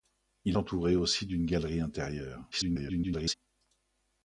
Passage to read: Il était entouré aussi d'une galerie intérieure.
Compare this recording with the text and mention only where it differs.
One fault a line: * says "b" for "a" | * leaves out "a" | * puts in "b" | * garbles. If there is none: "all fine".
* leaves out "était"
* garbles